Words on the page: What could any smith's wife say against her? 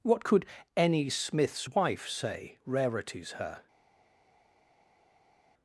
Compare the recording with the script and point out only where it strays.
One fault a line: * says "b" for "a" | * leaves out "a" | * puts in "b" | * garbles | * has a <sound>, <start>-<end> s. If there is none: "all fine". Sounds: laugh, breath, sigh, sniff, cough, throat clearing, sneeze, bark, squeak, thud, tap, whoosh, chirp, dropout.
* says "rarities" for "against"